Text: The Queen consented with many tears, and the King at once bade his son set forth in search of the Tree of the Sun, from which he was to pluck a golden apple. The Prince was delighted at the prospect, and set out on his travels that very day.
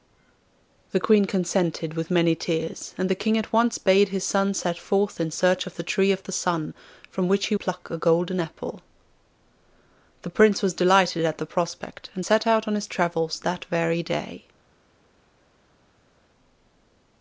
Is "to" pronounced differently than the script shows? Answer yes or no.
yes